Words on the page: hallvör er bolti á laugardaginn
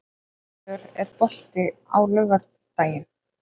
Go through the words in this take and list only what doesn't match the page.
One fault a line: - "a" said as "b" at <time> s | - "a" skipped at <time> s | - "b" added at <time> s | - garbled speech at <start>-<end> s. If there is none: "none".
none